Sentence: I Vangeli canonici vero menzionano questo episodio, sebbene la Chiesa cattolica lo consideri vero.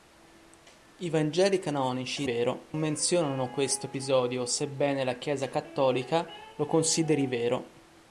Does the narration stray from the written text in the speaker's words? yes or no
no